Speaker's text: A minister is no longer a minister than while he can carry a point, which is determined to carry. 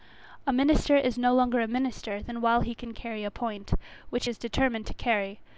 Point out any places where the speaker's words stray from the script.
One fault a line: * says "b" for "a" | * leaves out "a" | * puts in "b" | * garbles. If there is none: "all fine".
all fine